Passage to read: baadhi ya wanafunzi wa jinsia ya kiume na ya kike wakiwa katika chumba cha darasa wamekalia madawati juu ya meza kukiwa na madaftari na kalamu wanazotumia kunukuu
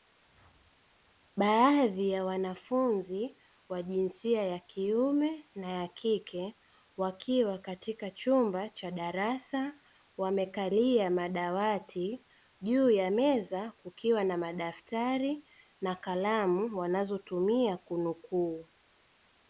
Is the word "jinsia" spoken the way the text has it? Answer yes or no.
yes